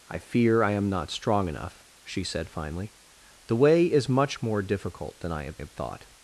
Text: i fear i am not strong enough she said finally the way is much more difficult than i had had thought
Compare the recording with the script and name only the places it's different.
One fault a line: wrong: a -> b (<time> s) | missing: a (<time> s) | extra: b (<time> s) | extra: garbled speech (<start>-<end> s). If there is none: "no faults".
no faults